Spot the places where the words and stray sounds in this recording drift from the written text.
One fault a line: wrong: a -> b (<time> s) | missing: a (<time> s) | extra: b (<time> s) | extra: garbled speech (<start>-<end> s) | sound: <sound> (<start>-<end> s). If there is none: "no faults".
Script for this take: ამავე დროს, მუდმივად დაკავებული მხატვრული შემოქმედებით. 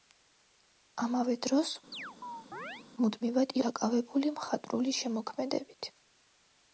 sound: chirp (1.9-2.8 s)